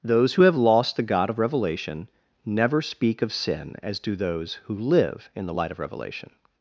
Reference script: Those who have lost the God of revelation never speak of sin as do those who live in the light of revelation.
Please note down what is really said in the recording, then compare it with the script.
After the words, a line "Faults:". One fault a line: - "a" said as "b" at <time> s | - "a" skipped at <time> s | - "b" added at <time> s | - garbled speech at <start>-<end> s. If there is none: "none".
Those who have lost the God of revelation never speak of sin as do those who live in the light of revelation.
Faults:
none